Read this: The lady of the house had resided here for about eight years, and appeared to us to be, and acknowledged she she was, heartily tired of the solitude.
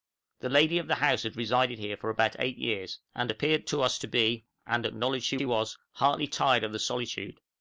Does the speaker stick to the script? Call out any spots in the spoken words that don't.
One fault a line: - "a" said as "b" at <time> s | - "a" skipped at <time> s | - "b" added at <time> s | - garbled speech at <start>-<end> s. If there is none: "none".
none